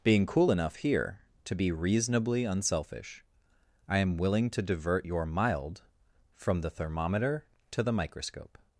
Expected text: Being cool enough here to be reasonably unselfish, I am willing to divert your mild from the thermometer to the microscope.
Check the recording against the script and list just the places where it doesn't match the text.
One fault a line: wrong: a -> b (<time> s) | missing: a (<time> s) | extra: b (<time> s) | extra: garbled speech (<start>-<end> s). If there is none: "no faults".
no faults